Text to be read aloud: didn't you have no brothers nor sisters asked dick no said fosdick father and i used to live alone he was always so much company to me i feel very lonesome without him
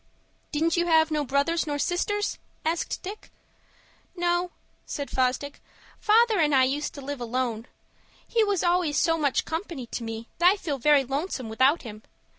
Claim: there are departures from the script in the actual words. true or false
false